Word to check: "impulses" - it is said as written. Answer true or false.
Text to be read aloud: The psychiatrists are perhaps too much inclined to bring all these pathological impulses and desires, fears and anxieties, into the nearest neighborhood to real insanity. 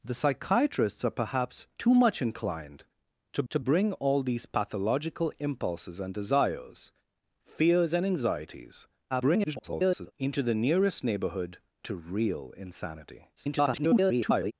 true